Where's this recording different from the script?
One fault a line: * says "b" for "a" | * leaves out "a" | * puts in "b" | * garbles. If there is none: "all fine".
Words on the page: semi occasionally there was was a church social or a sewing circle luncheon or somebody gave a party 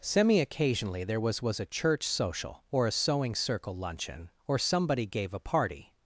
all fine